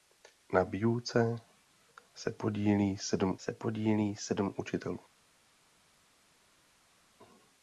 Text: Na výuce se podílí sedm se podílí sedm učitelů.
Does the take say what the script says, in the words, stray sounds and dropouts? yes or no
yes